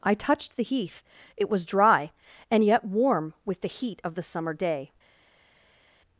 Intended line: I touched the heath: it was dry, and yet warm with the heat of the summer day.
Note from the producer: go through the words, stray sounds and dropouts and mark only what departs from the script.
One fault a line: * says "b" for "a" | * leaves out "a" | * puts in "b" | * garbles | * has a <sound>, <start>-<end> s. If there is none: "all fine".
all fine